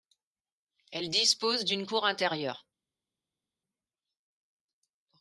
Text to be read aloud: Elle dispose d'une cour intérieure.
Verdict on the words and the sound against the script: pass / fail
pass